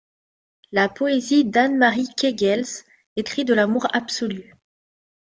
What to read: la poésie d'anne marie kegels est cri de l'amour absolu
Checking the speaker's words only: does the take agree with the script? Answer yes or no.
yes